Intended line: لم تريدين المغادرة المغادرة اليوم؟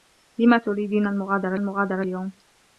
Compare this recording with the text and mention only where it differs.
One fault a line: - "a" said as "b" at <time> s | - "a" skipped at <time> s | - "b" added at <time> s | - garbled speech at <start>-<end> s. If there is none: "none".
none